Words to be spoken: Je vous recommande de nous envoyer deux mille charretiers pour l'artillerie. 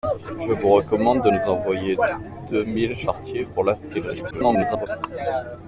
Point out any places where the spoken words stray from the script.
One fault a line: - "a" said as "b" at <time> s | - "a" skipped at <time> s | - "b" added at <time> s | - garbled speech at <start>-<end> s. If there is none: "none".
- garbled speech at 4.3-4.9 s